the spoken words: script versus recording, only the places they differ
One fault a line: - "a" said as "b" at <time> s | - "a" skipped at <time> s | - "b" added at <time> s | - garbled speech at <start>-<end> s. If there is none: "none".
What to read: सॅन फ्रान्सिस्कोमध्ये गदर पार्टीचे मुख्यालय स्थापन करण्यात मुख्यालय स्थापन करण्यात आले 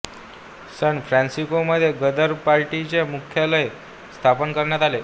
- "मुख्यालय स्थापन करण्यात" skipped at 4.8 s